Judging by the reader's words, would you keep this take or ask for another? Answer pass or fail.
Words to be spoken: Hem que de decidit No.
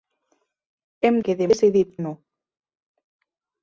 pass